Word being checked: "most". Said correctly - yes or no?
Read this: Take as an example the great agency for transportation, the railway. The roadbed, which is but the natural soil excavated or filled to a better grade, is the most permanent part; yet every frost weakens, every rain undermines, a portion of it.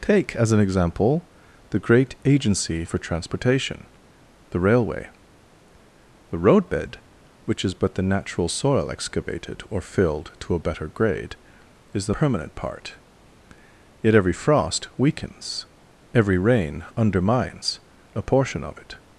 no